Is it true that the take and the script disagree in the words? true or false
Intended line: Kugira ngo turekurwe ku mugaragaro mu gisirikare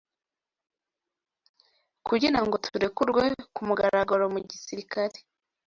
false